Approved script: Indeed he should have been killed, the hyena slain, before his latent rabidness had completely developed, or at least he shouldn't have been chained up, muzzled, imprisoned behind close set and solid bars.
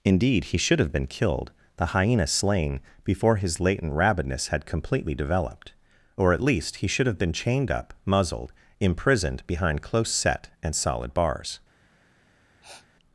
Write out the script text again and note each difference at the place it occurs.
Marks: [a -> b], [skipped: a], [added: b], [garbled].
Indeed he should have been killed, the hyena slain, before his latent rabidness had completely developed, or at least he [shouldn't -> should] have been chained up, muzzled, imprisoned behind close set and solid bars.